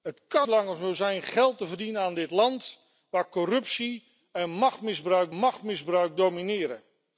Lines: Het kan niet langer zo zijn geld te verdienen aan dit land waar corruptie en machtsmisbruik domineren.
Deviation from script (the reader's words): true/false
true